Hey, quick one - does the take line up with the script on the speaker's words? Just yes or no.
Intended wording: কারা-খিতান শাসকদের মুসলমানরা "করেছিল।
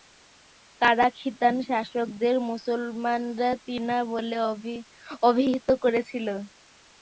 no